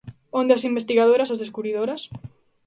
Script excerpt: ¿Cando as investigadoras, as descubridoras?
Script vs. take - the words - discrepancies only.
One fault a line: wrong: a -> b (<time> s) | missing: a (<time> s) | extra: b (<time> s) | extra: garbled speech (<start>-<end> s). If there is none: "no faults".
wrong: Cando -> Onde (0.4 s)